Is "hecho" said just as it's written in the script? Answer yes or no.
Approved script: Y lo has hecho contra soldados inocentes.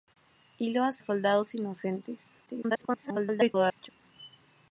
no